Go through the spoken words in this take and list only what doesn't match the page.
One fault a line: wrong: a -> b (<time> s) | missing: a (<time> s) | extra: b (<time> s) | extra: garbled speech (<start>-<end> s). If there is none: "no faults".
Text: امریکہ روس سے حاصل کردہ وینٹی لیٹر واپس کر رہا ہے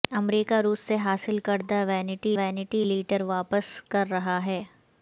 extra: وینٹی (2.4 s)